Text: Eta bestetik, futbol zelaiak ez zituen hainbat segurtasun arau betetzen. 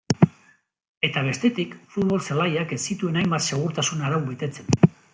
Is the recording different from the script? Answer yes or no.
no